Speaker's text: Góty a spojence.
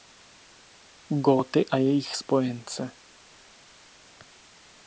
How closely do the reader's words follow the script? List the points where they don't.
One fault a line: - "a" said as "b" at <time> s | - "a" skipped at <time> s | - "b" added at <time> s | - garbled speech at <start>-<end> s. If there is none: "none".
- "jejich" added at 1.8 s